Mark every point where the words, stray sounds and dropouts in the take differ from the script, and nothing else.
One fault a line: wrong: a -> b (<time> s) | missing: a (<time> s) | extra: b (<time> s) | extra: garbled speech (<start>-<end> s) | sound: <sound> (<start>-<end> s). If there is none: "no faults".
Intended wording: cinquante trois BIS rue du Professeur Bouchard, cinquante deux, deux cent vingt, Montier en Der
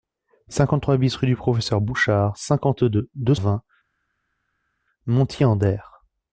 missing: cent (3.4 s)